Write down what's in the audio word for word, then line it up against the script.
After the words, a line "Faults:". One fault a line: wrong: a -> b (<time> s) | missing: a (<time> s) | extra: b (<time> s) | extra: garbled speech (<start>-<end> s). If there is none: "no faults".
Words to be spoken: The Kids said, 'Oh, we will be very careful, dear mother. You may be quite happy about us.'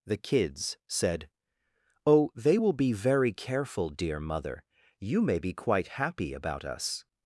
The Kids said, 'Oh, they will be very careful, dear mother. You may be quite happy about us.'
Faults:
wrong: we -> they (2.3 s)